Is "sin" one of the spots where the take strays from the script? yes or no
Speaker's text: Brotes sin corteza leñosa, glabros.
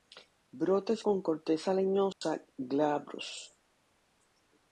yes